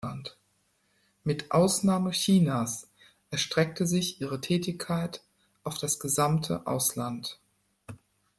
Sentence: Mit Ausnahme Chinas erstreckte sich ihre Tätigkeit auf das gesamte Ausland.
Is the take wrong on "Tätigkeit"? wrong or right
right